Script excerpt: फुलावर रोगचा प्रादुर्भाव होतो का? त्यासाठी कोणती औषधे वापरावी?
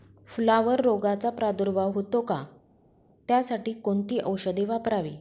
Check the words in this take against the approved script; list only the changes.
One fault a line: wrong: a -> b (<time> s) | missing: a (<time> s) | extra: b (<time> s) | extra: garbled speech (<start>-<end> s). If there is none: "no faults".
no faults